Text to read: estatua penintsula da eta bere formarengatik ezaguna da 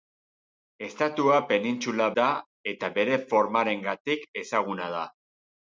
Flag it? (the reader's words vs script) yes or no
no